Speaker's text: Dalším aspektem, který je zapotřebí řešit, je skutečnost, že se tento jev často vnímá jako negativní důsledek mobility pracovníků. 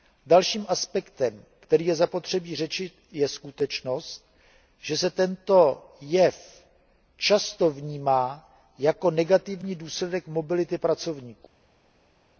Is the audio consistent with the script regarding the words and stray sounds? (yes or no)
yes